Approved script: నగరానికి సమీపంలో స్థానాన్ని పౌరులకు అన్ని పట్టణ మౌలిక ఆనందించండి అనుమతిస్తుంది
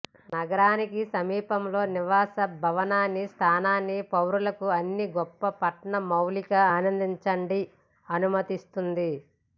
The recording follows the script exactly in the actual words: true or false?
false